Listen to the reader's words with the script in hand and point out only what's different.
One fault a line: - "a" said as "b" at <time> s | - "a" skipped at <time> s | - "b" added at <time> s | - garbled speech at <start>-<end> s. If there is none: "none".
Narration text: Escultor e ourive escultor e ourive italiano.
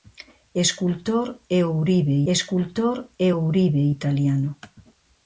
none